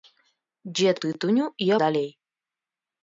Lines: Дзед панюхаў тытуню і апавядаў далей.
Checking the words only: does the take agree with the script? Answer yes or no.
no